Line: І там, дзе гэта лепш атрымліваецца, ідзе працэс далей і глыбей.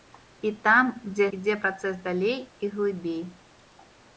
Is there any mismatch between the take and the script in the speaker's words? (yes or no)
yes